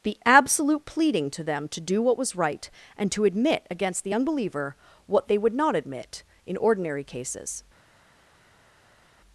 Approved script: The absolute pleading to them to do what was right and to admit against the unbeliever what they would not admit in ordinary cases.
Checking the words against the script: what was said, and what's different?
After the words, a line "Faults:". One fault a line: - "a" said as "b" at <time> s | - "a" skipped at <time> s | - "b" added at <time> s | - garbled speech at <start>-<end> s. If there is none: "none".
The absolute pleading to them to do what was right and to admit against the unbeliever what they would not admit in ordinary cases.
Faults:
none